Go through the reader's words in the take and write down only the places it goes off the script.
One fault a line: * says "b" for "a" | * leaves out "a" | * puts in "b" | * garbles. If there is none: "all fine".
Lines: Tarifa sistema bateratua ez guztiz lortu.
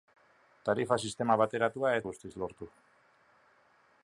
all fine